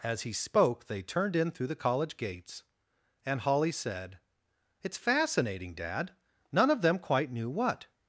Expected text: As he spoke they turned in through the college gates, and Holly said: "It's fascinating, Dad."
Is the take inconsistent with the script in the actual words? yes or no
yes